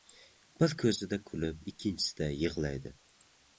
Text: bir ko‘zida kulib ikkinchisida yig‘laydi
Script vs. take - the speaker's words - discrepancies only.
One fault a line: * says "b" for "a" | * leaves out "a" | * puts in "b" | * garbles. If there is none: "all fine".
all fine